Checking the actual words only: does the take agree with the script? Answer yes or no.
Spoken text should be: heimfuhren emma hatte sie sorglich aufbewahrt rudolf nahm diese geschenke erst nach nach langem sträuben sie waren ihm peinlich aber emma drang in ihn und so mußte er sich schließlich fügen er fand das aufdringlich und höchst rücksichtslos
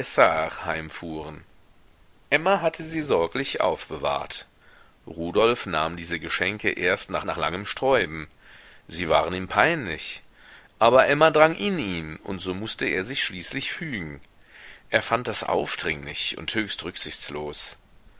yes